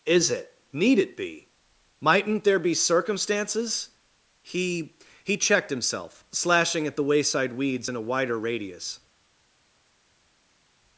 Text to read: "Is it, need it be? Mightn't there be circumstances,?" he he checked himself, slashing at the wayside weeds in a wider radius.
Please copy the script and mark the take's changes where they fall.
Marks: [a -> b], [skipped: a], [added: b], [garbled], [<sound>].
"Is it, need it be? Mightn't there be circumstances,?" he he checked himself, slashing at the wayside weeds in a wider radius.